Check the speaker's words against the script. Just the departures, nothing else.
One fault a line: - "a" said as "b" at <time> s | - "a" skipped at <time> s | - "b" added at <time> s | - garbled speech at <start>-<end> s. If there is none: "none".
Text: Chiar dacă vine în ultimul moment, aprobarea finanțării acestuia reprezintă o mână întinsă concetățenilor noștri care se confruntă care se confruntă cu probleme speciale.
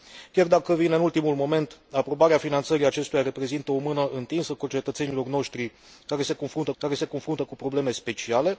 none